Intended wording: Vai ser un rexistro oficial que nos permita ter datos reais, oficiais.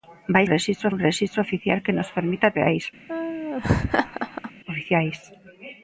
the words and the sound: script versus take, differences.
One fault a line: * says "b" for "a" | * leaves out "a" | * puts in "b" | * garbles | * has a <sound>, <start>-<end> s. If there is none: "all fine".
* says "rexistro" for "ser"
* leaves out "ter datos"
* has a laugh, 3.1-4.5 s